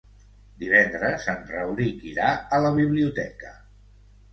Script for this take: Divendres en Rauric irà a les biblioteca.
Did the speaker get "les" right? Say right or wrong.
wrong